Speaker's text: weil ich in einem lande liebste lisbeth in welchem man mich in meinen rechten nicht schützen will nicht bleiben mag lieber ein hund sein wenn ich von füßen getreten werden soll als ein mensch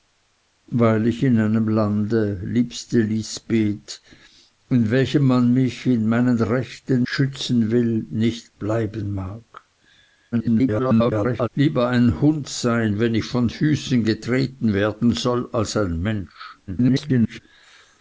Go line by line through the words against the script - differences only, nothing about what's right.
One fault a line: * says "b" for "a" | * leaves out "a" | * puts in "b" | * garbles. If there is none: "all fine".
* leaves out "nicht"
* garbles
* garbles